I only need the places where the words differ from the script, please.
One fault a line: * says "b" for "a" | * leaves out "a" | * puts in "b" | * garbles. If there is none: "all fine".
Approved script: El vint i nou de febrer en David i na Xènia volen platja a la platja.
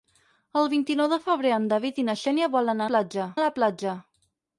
all fine